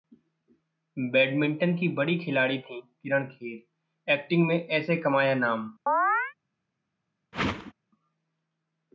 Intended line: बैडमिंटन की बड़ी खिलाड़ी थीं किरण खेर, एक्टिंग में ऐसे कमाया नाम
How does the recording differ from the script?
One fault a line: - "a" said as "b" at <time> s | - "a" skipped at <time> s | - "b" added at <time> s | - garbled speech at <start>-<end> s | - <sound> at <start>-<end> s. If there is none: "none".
- chirp at 5.9-6.3 s
- whoosh at 7.3-7.7 s